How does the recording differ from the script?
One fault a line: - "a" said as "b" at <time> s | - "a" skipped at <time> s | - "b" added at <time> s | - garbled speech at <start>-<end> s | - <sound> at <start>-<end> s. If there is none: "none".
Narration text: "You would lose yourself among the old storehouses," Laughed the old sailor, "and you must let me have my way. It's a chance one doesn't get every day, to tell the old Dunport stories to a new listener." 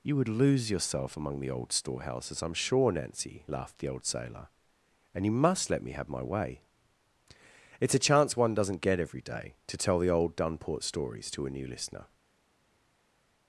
- "I'm sure Nancy" added at 2.4 s